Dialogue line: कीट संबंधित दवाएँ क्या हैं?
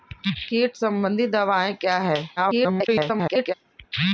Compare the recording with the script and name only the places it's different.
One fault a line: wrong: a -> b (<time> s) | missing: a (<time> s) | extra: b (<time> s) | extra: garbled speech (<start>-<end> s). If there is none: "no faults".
extra: garbled speech (2.4-3.5 s)